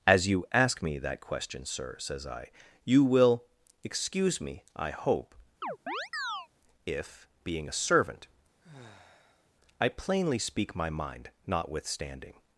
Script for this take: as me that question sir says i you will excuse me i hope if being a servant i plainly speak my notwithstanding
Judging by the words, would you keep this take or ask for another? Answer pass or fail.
fail